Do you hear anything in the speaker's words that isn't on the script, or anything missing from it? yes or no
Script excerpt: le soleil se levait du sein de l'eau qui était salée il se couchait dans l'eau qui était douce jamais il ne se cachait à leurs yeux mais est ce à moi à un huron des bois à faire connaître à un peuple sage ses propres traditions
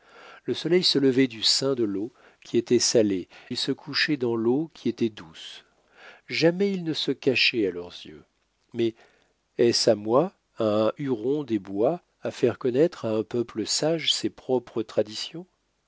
no